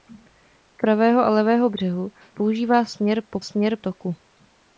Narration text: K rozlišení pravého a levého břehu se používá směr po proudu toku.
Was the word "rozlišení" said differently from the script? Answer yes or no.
yes